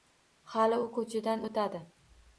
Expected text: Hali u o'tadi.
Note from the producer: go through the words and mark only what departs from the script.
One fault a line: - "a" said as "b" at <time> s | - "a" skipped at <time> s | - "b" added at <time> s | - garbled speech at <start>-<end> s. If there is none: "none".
- "ko‘chadan" added at 1.0 s